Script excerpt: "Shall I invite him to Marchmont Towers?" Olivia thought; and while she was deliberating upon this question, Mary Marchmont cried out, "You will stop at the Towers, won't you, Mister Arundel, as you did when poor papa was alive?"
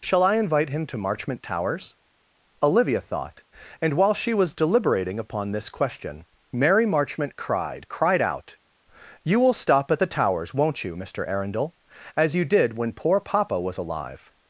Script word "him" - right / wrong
right